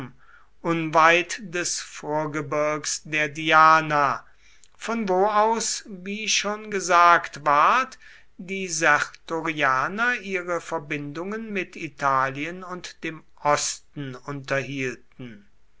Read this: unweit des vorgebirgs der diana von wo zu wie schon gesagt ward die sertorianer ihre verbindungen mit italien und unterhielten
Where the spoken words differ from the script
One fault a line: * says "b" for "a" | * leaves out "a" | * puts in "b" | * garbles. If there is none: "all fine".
* says "aus" for "zu"
* puts in "dem osten"